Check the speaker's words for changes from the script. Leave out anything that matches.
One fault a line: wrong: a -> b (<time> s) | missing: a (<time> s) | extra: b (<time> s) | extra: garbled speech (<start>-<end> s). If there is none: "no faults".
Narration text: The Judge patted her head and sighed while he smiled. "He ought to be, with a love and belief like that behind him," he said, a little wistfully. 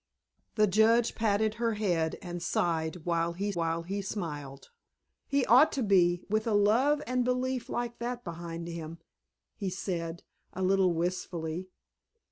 extra: while he (3.5 s)